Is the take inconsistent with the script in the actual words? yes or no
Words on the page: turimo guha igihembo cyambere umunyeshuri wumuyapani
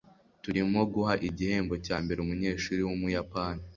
no